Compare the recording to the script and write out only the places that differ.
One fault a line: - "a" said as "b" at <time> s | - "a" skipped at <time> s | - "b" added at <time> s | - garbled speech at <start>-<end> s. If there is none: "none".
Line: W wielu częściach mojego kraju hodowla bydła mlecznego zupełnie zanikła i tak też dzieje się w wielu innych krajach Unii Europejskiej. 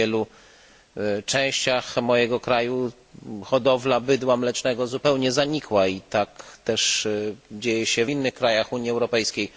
- "w wielu" skipped at 8.1 s